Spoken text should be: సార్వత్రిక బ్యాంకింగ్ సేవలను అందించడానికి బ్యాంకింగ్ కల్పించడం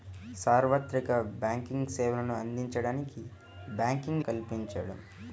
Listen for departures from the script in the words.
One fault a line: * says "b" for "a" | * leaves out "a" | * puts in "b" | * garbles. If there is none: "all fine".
all fine